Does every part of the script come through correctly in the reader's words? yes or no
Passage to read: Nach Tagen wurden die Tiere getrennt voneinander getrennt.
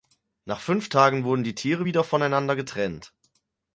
no